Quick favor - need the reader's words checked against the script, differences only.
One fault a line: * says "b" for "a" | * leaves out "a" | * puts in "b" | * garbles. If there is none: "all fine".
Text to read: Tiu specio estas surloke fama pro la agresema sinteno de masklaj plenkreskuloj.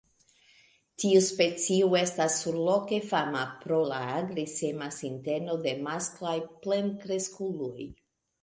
all fine